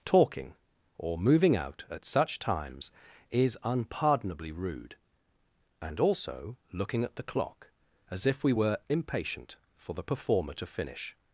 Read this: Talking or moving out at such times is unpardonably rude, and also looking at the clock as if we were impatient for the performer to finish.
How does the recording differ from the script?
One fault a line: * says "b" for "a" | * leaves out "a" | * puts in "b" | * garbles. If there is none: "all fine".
all fine